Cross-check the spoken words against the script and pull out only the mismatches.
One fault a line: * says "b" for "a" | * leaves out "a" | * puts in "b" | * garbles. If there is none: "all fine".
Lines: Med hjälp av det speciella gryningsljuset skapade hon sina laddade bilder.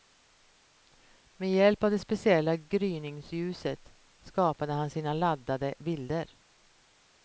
* says "han" for "hon"